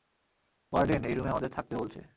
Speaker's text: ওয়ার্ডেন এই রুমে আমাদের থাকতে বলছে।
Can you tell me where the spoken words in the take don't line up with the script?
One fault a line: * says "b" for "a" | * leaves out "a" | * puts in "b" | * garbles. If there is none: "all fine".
all fine